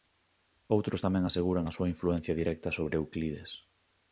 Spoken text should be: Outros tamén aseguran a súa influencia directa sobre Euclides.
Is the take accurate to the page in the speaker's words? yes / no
yes